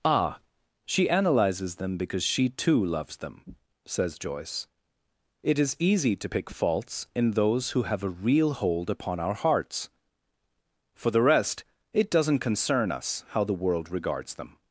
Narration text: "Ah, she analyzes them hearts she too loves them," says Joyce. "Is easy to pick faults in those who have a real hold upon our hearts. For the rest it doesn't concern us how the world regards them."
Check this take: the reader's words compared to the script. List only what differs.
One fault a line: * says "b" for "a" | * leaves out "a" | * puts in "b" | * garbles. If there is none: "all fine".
* says "because" for "hearts"
* puts in "It"